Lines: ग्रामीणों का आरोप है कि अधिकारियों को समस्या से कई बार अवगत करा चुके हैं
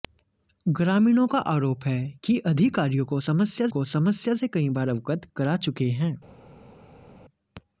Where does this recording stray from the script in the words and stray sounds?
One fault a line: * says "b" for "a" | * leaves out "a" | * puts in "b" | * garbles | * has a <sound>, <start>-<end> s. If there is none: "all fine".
* puts in "को समस्या"